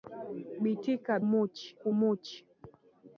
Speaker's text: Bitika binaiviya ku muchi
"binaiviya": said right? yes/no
no